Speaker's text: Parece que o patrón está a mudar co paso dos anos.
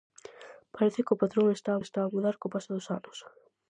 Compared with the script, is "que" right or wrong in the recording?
right